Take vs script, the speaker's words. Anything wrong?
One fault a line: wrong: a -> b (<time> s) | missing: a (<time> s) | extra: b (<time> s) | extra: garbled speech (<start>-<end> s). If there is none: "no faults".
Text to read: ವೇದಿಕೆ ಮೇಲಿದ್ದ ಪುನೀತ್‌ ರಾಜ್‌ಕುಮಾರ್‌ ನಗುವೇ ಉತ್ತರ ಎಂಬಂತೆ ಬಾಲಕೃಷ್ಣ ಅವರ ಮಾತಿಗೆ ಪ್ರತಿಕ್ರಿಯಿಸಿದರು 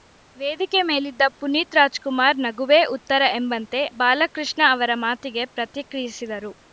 no faults